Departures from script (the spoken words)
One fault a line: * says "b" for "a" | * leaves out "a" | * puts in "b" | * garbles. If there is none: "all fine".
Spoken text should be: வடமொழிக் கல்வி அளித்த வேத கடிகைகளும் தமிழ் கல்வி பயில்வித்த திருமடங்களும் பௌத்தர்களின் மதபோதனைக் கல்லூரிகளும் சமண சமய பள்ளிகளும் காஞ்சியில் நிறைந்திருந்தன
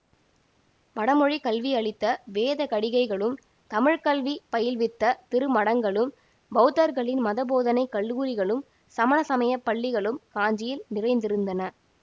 all fine